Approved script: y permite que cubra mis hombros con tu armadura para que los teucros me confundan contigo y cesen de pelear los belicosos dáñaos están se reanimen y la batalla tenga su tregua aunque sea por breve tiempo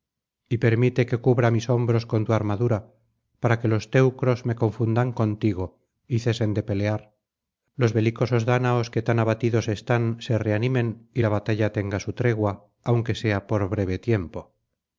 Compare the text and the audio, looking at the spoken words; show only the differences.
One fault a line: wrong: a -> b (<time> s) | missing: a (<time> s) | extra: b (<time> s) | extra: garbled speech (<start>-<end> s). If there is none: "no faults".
extra: que tan abatidos (8.9 s)